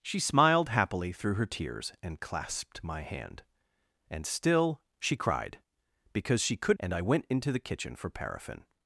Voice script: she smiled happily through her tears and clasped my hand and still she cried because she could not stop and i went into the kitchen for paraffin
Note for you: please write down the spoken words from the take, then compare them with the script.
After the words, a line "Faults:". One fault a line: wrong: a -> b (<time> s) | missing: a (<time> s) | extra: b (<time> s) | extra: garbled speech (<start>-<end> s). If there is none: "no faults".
she smiled happily through her tears and clasped my hand and still she cried because she could and i went into the kitchen for paraffin
Faults:
missing: not stop (6.8 s)